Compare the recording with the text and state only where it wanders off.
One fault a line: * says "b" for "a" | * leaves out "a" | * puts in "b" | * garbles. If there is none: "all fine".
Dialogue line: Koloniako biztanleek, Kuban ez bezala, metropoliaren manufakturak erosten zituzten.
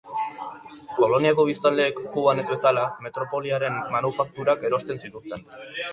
all fine